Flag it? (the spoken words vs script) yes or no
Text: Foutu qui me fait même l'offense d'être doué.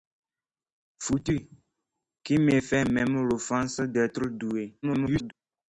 yes